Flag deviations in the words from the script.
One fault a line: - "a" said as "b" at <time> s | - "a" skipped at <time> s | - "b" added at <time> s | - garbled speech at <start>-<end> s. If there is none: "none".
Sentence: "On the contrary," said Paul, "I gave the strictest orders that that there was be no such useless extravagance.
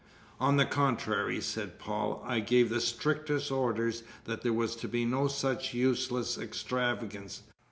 - "that" skipped at 4.5 s
- "to" added at 4.7 s